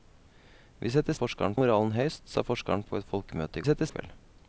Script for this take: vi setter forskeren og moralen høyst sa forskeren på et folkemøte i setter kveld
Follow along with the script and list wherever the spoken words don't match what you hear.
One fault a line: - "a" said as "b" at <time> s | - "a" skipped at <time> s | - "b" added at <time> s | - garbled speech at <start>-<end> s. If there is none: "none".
none